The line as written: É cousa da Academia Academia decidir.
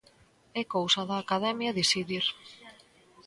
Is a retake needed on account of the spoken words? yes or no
yes